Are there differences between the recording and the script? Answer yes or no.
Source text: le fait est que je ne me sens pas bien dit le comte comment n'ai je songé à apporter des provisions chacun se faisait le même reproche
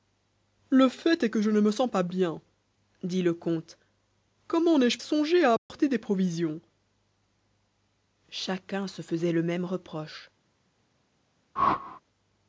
no